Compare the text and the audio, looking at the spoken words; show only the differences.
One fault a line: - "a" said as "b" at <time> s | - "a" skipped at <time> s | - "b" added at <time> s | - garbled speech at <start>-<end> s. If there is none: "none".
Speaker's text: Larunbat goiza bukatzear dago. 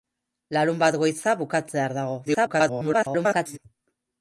- garbled speech at 2.2-3.6 s